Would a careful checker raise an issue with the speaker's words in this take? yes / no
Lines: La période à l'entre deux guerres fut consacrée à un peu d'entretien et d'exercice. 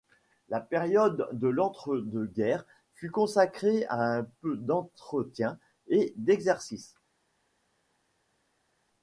yes